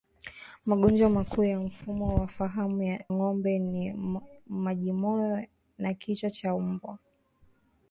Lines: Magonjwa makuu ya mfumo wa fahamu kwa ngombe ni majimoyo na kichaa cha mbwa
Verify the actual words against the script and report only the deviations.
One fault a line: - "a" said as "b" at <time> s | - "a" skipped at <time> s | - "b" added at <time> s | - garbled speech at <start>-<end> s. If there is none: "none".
- "kwa" skipped at 3.0 s